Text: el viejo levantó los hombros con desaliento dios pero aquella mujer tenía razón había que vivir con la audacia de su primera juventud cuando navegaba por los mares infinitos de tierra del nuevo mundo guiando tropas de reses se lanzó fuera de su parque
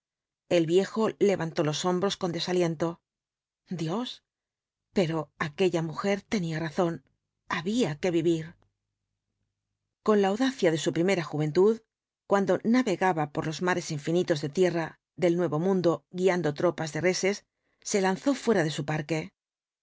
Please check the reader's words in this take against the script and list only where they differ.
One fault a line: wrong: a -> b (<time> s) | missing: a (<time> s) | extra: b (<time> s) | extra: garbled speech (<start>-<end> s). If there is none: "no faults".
no faults